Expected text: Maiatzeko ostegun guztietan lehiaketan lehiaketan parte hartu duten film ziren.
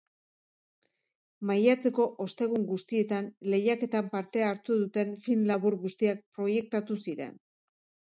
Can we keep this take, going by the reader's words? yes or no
no